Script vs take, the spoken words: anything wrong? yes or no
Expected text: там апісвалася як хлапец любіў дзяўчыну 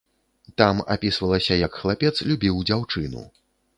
no